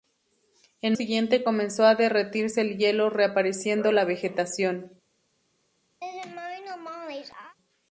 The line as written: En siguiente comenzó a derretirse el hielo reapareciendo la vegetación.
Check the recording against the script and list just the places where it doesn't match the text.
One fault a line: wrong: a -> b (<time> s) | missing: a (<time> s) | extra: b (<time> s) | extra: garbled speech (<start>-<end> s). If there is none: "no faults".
no faults